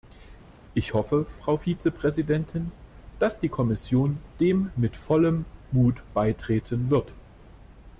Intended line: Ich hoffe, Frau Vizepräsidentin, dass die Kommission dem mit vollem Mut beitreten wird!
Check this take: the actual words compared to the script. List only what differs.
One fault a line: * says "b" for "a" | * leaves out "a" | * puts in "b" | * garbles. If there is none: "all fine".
all fine